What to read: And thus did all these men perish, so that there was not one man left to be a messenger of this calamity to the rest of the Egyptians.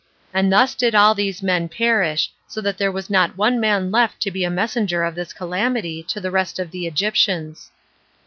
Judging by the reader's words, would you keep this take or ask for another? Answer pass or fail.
pass